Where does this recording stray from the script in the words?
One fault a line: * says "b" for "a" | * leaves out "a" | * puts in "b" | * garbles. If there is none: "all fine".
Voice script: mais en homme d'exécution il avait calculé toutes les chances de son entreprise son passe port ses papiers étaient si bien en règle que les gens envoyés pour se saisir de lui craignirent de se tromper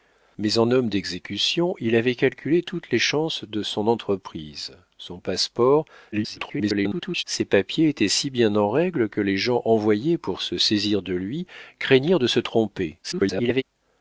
* garbles
* garbles